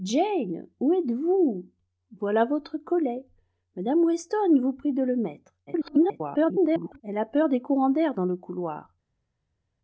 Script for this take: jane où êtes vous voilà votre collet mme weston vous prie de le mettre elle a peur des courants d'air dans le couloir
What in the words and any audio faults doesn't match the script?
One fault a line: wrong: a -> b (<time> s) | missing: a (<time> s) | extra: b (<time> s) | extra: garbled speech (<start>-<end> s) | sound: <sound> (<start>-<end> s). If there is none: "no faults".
extra: garbled speech (5.7-7.0 s)